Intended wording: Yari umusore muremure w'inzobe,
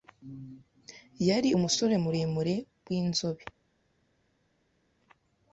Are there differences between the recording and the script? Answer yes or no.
no